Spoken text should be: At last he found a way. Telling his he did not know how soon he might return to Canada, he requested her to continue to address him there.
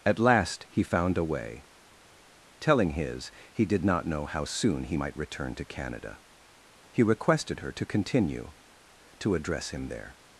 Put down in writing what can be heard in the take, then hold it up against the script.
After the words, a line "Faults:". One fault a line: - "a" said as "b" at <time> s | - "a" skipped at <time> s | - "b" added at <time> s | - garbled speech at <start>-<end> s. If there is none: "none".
At last he found a way. Telling his he did not know how soon he might return to Canada, he requested her to continue to address him there.
Faults:
none